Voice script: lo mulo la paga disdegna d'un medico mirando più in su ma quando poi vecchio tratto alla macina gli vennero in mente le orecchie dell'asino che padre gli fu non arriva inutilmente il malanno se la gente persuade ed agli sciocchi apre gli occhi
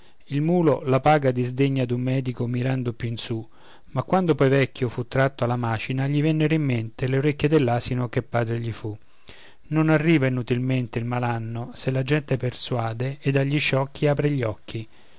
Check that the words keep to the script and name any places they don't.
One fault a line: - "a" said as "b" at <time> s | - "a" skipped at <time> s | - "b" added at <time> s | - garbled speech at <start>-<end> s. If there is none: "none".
- "lo" said as "il" at 0.3 s
- "fu" added at 4.9 s